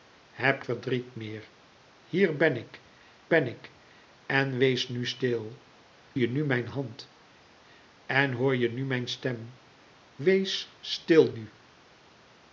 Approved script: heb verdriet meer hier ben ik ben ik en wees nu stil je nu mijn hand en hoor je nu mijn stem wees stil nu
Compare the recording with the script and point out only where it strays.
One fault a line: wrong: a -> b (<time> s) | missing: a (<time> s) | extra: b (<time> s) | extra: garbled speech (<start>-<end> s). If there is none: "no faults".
no faults